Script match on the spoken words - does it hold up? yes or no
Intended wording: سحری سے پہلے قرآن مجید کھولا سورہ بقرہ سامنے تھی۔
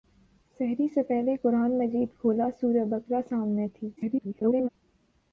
no